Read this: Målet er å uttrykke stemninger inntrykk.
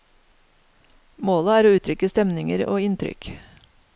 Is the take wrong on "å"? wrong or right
right